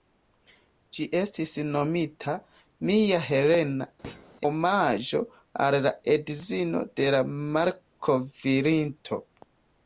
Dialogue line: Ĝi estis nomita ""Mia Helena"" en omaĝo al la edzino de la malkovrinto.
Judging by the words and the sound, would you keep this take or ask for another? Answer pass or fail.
fail